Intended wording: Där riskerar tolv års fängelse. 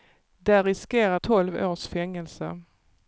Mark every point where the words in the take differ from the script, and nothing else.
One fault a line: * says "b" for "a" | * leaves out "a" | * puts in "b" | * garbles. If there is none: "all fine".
all fine